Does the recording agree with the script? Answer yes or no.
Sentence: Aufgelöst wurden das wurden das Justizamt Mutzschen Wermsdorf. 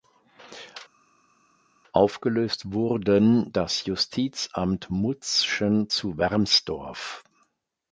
no